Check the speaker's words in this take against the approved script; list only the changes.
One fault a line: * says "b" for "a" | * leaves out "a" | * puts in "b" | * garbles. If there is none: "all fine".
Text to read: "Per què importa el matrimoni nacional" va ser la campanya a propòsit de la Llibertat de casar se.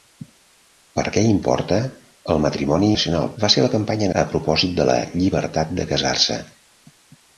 all fine